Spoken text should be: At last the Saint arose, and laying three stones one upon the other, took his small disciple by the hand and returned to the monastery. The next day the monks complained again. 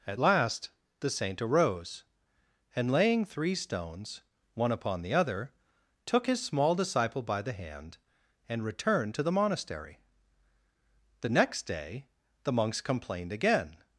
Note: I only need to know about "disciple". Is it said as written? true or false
true